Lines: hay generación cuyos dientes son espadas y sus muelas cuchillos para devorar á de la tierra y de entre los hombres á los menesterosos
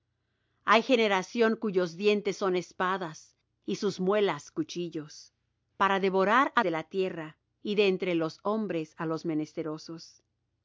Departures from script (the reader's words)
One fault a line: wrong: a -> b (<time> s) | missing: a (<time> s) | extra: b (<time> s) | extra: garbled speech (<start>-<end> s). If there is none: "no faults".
no faults